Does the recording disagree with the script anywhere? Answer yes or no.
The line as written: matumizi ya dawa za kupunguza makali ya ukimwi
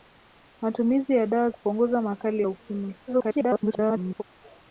yes